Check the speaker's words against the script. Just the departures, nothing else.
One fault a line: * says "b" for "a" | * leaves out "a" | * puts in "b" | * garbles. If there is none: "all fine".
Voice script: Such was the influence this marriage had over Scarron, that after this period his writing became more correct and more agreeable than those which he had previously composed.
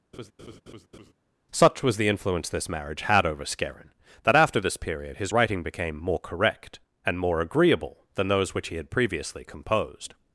all fine